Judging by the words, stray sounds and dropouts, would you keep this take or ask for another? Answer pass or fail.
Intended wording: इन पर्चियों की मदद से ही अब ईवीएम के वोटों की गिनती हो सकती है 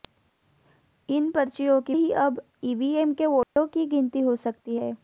fail